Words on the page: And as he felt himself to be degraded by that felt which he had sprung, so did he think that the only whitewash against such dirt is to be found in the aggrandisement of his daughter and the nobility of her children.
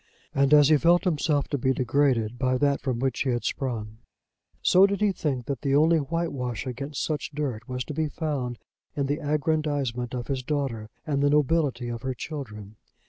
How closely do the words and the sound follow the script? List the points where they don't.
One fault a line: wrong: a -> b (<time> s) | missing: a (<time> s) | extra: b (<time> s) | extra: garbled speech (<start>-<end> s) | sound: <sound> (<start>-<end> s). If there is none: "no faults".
wrong: felt -> from (2.8 s)
wrong: is -> was (7.7 s)